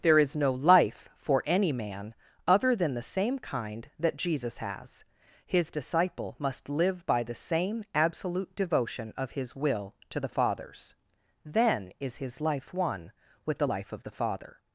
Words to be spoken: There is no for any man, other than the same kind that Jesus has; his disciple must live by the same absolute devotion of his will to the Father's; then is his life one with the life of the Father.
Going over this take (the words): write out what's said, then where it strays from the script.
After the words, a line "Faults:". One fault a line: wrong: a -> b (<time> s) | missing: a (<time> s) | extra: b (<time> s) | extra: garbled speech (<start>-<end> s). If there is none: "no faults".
There is no life for any man, other than the same kind that Jesus has; his disciple must live by the same absolute devotion of his will to the Father's; then is his life one with the life of the Father.
Faults:
extra: life (0.5 s)